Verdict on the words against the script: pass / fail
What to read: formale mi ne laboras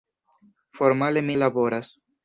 fail